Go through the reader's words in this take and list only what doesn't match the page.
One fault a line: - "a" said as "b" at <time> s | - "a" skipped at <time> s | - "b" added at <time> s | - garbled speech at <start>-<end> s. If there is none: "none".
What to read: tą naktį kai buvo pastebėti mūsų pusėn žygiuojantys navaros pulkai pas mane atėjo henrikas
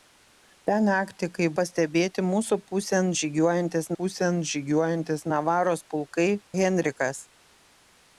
- "buvo" skipped at 1.5 s
- "pusėn žygiuojantys" added at 4.0 s
- "pas mane atėjo" skipped at 6.3 s